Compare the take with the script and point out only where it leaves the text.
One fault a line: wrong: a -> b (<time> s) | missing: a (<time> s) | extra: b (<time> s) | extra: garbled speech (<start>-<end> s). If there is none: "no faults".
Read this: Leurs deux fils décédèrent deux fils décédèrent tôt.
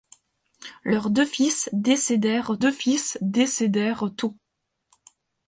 no faults